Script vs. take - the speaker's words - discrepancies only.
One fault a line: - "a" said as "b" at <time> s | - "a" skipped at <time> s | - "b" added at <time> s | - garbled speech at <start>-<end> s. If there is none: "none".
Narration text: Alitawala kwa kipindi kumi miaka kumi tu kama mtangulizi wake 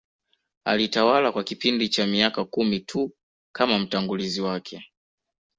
- "kumi" said as "cha" at 1.9 s